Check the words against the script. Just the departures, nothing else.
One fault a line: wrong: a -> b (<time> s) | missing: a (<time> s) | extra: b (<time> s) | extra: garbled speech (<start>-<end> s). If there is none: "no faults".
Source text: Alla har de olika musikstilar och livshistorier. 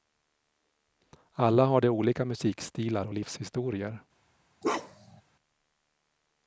no faults